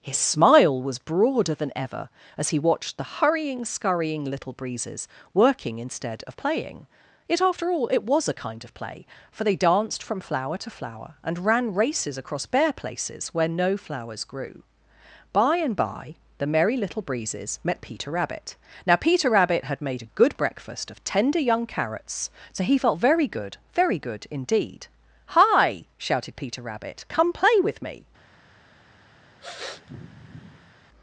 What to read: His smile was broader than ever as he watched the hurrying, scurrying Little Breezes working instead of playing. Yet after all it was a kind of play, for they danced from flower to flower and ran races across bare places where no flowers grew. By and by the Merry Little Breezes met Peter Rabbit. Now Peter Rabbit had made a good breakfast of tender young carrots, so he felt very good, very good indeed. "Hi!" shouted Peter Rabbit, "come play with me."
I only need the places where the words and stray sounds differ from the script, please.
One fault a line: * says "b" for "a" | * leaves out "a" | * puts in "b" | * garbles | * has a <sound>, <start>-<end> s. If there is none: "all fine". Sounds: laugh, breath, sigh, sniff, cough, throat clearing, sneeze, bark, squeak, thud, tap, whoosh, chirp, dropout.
* has a sniff, 29.4-30.7 s